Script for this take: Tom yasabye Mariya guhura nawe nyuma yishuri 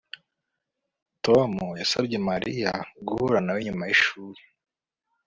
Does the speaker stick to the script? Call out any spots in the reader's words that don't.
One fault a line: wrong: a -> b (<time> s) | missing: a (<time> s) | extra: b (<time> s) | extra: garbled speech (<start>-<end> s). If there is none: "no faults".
no faults